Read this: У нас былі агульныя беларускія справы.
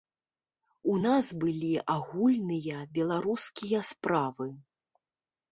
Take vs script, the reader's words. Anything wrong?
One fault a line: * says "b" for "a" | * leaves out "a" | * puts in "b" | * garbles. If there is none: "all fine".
all fine